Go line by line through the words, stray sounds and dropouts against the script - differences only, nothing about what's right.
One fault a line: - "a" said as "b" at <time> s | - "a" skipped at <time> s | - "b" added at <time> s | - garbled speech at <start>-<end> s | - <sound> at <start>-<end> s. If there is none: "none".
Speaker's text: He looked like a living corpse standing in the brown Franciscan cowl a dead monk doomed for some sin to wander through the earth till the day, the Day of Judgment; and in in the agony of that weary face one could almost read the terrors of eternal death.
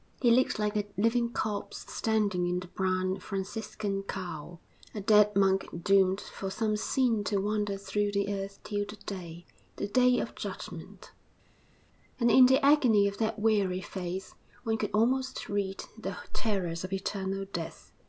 - "in" skipped at 12.5 s